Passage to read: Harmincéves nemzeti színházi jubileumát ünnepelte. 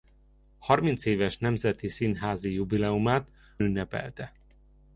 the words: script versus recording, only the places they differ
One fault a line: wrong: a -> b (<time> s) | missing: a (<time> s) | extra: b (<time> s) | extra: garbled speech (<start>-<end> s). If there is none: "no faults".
no faults